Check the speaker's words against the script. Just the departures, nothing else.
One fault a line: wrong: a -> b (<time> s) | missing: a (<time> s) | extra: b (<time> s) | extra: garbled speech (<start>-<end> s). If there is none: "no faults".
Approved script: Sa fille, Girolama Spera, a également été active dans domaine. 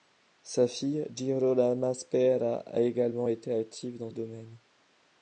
no faults